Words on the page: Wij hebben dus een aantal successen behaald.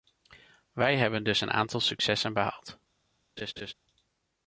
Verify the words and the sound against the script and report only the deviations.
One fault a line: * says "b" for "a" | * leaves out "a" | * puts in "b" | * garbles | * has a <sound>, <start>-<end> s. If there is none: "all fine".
* has a laugh, 3.4-3.7 s